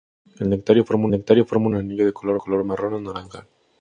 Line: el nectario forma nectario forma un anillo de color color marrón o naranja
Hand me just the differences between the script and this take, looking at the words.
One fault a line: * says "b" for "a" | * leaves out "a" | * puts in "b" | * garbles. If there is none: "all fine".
all fine